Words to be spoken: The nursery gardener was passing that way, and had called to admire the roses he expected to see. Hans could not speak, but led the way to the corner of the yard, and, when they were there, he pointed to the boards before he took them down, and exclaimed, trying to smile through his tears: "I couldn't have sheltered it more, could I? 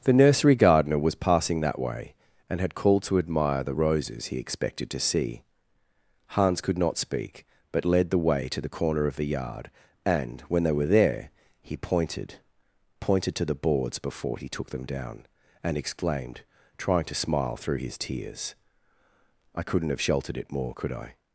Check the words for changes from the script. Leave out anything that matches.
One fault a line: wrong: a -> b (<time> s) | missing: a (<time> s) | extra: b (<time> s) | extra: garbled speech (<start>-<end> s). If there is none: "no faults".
extra: pointed (13.0 s)